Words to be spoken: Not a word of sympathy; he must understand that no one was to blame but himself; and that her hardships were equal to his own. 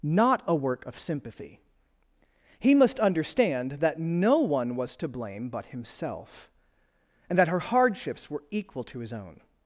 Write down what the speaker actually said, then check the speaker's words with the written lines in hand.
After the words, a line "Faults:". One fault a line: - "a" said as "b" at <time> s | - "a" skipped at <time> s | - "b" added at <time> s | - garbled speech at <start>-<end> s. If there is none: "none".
Not a work of sympathy; he must understand that no one was to blame but himself; and that her hardships were equal to his own.
Faults:
- "word" said as "work" at 0.6 s